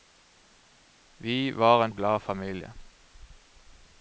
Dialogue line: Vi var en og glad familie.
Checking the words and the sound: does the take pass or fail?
pass